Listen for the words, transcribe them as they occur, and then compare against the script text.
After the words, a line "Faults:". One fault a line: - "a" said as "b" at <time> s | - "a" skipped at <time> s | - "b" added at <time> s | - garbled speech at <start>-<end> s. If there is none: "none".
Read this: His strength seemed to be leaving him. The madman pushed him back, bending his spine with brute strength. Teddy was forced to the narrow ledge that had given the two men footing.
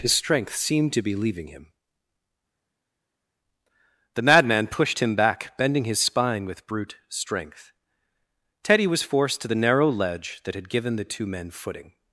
His strength seemed to be leaving him. The madman pushed him back, bending his spine with brute strength. Teddy was forced to the narrow ledge that had given the two men footing.
Faults:
none